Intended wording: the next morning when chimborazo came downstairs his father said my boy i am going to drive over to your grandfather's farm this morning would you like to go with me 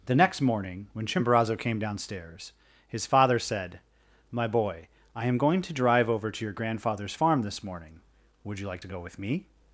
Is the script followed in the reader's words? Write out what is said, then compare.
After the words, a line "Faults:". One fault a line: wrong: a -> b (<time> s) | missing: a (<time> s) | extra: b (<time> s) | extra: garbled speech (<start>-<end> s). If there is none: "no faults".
the next morning when chimborazo came downstairs his father said my boy i am going to drive over to your grandfather's farm this morning would you like to go with me
Faults:
no faults